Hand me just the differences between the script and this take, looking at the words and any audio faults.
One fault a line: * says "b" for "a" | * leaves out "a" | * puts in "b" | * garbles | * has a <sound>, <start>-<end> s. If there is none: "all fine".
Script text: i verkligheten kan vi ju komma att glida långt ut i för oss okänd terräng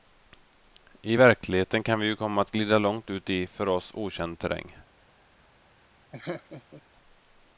* has a laugh, 6.1-6.8 s